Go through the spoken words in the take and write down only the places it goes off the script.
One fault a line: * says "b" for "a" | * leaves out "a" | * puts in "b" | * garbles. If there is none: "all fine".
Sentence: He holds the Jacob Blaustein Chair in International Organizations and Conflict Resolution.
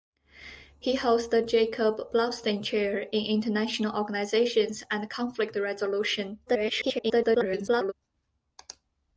* garbles